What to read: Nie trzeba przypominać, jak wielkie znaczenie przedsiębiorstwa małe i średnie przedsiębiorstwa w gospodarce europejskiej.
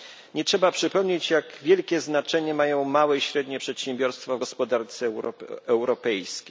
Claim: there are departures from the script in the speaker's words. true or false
true